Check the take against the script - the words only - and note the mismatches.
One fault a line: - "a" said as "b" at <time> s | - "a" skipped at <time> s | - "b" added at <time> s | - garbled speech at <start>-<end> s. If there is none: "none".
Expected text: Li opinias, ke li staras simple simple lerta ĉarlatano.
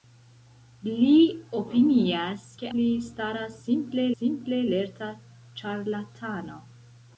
none